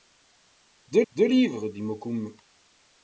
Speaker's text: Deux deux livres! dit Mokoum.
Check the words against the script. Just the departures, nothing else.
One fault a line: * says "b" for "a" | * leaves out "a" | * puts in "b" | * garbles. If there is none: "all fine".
all fine